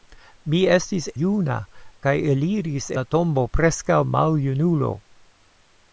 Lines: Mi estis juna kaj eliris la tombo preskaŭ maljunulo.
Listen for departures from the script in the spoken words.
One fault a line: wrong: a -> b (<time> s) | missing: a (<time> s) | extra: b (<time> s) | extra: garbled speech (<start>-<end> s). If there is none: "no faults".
no faults